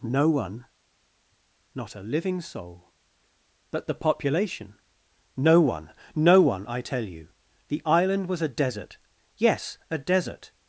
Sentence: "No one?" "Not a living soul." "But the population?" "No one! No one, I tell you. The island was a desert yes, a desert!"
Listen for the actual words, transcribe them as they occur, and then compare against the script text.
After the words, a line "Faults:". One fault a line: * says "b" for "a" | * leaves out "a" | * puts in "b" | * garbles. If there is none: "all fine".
"No one?" "Not a living soul." "But the population?" "No one! No one, I tell you. The island was a desert yes, a desert!"
Faults:
all fine